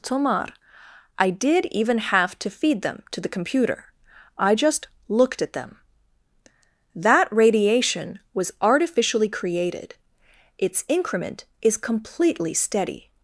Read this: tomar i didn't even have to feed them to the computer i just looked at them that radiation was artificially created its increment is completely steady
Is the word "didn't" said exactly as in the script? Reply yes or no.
no